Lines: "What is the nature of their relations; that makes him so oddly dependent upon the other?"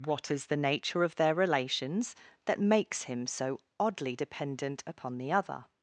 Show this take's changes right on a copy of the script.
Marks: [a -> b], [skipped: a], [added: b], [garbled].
"What is the nature of their relations; that makes him so oddly dependent upon the other?"